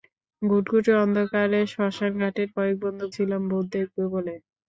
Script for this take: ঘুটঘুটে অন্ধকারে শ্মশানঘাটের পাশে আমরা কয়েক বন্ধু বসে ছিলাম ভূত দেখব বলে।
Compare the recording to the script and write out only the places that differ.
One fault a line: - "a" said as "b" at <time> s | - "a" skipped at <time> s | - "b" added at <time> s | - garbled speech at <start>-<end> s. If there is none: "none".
- "পাশে আমরা" skipped at 2.5 s
- "বসে" skipped at 3.0 s